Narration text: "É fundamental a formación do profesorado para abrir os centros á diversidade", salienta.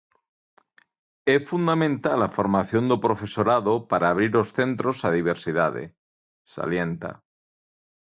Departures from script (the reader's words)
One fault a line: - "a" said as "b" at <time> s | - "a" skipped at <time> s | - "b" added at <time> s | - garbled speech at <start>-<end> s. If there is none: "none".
none